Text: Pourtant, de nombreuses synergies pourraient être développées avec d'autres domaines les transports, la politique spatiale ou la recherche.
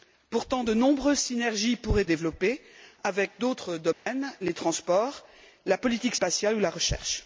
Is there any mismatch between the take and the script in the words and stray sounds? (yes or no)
yes